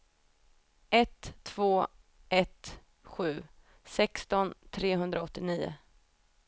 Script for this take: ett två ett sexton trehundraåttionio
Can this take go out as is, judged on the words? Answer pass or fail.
fail